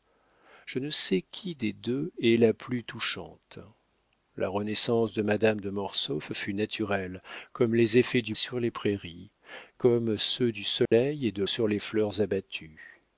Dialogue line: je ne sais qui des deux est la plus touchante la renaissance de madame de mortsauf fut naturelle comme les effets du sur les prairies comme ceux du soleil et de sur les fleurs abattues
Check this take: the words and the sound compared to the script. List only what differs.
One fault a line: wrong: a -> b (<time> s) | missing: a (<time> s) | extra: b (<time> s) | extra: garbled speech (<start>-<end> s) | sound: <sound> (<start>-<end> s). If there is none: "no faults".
sound: dropout (10.9-10.9 s)